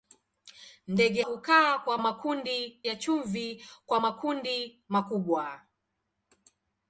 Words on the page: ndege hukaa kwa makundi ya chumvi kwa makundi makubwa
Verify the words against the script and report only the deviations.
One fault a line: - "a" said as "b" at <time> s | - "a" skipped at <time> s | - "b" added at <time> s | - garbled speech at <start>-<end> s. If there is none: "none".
none